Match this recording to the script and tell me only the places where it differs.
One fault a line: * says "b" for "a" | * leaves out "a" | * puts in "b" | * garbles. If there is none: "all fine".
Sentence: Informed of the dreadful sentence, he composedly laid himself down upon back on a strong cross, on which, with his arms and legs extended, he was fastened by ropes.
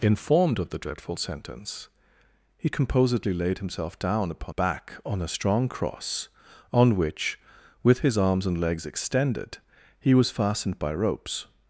all fine